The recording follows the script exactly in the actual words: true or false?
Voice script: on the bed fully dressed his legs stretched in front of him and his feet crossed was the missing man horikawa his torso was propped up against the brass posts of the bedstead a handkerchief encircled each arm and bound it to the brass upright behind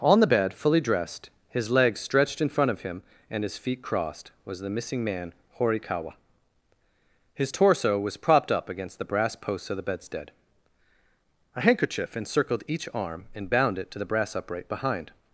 true